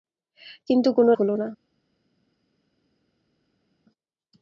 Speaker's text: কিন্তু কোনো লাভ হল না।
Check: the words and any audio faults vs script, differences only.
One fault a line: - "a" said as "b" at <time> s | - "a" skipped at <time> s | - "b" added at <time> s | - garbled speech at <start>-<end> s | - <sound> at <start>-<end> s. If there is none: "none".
- "লাভ" skipped at 1.1 s